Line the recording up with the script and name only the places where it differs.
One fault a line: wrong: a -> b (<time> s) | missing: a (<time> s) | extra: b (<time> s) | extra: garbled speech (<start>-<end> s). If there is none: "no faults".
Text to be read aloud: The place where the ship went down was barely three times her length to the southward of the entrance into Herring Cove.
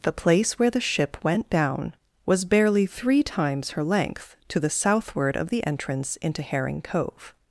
no faults